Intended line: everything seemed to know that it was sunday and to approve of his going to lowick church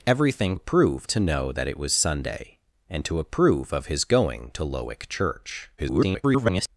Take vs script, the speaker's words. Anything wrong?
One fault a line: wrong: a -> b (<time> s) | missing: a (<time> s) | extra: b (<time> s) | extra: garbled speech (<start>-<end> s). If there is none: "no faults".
wrong: seemed -> approve (0.5 s)
extra: garbled speech (5.8-6.7 s)